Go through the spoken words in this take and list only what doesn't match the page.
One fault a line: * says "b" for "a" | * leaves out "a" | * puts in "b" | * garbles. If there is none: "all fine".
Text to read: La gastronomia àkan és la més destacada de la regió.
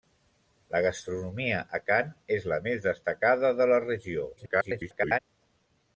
* garbles